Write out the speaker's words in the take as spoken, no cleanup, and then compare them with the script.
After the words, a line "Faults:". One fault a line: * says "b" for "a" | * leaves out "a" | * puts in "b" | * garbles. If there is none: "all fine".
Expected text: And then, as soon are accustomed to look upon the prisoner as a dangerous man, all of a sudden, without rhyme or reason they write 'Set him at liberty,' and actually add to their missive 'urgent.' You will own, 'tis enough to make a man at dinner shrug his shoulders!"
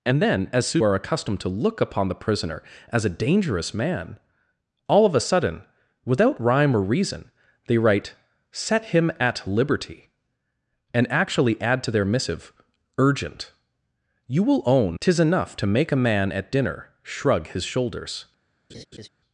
And then, as soon are accustomed to look upon the prisoner as a dangerous man, all of a sudden, without rhyme or reason they write 'Set him at liberty,' and actually add to their missive 'urgent.' You will own, 'tis enough to make a man at dinner shrug his shoulders!"
Faults:
all fine